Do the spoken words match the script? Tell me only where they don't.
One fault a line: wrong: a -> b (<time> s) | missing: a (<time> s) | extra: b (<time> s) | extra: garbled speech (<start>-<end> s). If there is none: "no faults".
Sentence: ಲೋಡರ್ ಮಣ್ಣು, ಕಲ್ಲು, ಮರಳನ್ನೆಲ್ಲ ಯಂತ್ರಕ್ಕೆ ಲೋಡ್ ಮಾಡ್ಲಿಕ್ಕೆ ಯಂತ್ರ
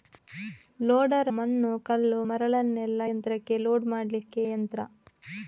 no faults